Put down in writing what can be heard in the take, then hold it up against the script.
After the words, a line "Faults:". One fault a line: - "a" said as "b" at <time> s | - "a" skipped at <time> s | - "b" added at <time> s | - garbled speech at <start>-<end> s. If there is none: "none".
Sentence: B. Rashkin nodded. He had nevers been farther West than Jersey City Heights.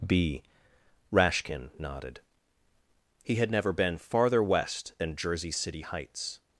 B. Rashkin nodded. He had never been farther West than Jersey City Heights.
Faults:
- "nevers" said as "never" at 3.5 s